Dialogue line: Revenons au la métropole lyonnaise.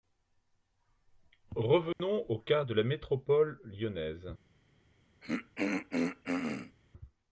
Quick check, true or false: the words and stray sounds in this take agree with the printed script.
false